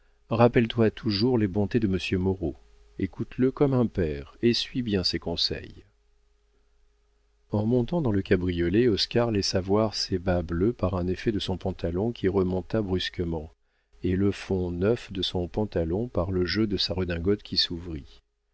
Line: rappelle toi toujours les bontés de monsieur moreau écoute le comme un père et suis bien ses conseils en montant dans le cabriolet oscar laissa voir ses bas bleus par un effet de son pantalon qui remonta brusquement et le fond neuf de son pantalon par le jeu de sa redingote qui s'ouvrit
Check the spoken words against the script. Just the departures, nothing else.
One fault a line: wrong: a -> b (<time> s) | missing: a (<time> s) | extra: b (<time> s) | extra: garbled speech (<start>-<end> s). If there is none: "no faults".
no faults